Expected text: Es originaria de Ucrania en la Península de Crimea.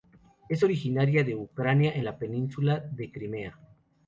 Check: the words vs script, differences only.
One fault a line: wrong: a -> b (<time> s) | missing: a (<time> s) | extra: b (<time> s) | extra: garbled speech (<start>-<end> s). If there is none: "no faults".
no faults